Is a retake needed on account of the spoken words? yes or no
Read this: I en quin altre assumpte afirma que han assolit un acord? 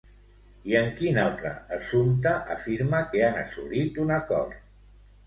no